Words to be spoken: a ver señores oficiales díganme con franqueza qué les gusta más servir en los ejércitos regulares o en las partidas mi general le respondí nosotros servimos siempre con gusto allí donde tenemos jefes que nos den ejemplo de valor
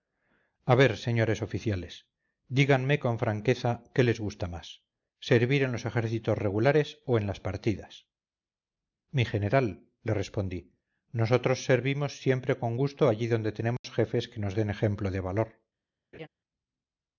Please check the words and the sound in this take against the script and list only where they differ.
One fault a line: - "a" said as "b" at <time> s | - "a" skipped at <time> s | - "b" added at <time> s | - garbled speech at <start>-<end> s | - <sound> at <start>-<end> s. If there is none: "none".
- dropout at 13.8-13.8 s
- laugh at 16.1-16.3 s